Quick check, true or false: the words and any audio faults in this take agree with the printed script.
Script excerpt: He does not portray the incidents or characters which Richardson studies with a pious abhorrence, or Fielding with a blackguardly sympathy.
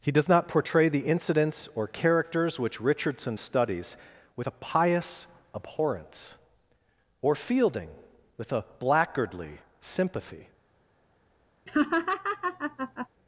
false